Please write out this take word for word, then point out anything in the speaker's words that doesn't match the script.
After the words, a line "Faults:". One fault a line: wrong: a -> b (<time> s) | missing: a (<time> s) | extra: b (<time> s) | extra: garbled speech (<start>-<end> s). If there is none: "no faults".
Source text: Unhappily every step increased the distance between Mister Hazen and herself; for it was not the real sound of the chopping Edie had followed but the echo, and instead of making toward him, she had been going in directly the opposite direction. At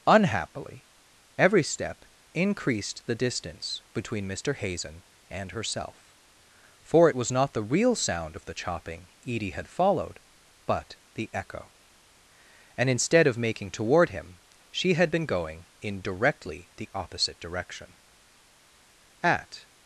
Unhappily every step increased the distance between Mister Hazen and herself; for it was not the real sound of the chopping Edie had followed but the echo, and instead of making toward him, she had been going in directly the opposite direction. At
Faults:
no faults